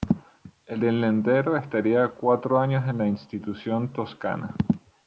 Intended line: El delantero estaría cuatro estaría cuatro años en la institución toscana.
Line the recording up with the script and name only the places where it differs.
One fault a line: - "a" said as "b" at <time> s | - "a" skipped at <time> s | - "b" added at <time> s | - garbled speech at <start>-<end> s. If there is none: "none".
- "estaría cuatro" skipped at 2.6 s